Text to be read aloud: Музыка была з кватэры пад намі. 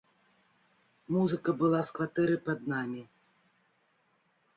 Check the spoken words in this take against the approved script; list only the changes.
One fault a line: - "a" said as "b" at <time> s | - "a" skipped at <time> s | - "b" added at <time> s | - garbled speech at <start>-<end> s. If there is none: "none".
none